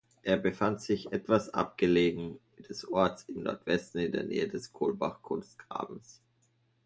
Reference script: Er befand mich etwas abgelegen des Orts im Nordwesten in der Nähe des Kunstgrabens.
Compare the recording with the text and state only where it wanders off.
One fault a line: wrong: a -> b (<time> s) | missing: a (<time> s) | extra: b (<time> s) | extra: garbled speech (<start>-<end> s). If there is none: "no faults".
wrong: mich -> sich (0.8 s)
extra: Kohlbach (4.7 s)